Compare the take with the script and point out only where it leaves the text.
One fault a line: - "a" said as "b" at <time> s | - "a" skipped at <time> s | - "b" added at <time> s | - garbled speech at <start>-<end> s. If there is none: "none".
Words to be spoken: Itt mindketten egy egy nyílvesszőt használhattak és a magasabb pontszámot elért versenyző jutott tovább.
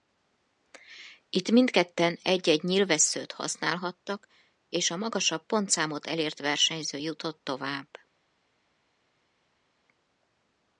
none